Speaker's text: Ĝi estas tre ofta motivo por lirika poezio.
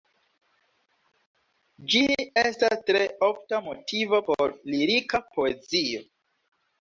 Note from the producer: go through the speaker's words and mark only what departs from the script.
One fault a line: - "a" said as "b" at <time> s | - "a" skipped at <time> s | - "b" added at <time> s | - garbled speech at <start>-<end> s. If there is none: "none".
none